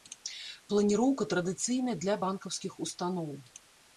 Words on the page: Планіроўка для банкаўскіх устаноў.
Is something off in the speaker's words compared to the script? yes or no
yes